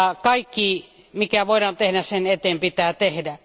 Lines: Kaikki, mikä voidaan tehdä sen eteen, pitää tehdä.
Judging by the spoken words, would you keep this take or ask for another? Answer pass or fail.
pass